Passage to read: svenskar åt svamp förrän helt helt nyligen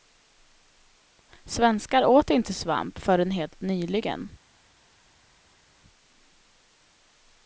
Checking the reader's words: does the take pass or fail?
fail